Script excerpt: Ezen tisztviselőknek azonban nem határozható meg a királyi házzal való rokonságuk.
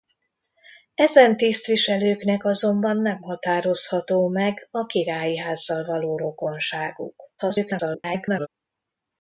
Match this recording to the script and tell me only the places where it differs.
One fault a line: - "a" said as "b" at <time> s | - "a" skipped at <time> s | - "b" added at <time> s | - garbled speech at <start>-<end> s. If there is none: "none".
- garbled speech at 7.4-8.5 s